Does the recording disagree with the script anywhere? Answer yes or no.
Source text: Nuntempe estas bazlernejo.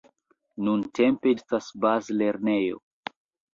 no